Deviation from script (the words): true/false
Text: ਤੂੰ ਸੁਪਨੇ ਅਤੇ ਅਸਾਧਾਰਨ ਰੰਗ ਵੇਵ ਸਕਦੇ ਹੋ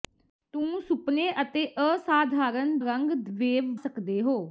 false